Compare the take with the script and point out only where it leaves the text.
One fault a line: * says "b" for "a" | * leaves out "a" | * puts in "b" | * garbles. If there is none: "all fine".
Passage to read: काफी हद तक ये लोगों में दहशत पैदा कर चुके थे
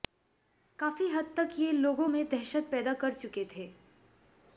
all fine